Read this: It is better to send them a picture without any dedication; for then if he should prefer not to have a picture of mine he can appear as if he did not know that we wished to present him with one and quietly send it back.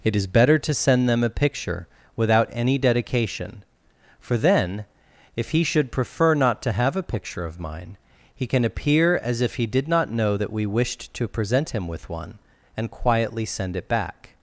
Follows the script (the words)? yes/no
yes